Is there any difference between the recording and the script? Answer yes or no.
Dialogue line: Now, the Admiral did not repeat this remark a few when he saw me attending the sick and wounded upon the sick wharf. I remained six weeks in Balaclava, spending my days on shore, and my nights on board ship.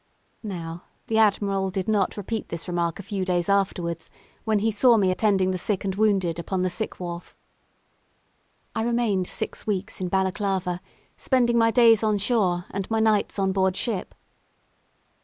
yes